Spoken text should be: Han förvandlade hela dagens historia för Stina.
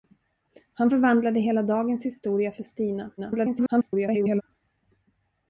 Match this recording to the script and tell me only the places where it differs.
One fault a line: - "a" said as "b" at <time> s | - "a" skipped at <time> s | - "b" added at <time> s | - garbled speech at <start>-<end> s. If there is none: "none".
- garbled speech at 3.2-4.4 s